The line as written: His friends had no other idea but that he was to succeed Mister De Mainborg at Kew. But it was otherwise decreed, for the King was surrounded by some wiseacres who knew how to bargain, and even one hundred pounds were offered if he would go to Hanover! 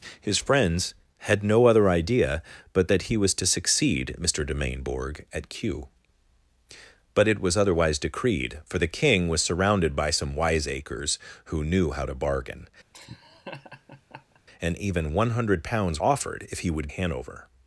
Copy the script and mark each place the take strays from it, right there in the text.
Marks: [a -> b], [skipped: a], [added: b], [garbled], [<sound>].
His friends had no other idea but that he was to succeed Mister De Mainborg at Kew. But it was otherwise decreed, for the King was surrounded by some wiseacres who knew how to bargain, [laugh] and even one hundred pounds [skipped: were] offered if he would [skipped: go to] Hanover!